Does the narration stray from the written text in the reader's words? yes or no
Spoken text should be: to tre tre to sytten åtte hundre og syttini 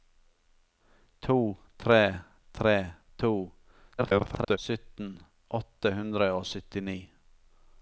yes